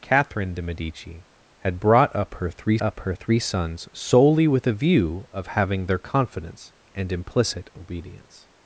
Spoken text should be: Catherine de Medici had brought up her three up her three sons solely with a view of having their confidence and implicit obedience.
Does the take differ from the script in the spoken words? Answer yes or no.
no